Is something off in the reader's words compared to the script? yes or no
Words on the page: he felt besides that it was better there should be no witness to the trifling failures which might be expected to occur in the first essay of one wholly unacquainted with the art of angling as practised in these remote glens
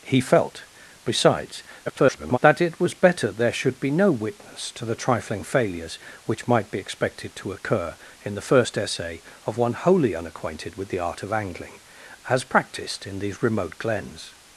yes